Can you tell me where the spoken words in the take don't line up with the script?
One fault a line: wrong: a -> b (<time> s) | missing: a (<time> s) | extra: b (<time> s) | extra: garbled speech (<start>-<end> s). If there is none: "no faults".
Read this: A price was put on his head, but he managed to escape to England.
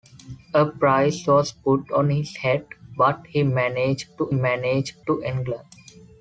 wrong: escape -> managed (4.3 s)